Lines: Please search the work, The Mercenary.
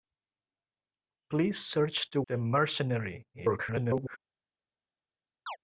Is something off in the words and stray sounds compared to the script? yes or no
yes